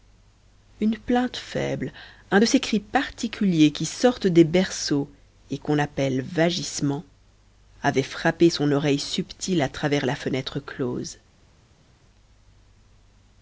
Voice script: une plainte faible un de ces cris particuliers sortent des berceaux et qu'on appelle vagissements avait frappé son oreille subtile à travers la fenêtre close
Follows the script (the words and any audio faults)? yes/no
no